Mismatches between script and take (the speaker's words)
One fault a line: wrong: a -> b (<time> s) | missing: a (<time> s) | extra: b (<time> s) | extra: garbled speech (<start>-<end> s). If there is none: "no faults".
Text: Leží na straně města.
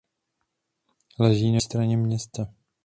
no faults